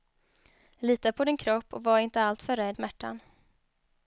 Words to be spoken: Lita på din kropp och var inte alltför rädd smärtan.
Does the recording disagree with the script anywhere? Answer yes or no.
no